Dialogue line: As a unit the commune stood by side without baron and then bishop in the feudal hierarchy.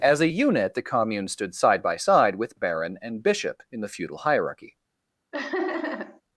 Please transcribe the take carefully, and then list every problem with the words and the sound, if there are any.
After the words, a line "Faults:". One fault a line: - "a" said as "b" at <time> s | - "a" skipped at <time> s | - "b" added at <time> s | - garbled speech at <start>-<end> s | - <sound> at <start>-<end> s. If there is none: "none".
As a unit the commune stood side by side with baron and bishop in the feudal hierarchy.
Faults:
- "side" added at 1.6 s
- "without" said as "with" at 2.4 s
- "then" skipped at 3.2 s
- laugh at 5.3-6.2 s